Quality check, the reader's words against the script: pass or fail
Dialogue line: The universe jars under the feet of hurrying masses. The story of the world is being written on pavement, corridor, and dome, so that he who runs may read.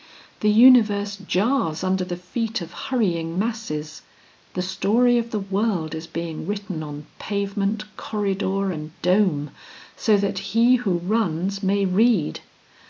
pass